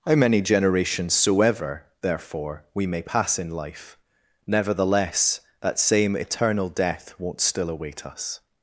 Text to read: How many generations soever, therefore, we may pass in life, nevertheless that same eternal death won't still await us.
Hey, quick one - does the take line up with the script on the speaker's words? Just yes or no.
yes